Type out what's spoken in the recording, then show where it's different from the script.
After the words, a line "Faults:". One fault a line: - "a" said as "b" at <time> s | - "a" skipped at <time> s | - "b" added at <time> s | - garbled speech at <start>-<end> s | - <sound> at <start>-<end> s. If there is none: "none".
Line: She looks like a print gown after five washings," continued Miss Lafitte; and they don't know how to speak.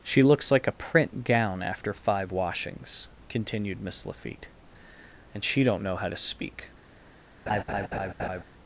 She looks like a print gown after five washings," continued Miss Lafitte; and she don't know how to speak.
Faults:
- "they" said as "she" at 5.4 s
- laugh at 7.5-8.4 s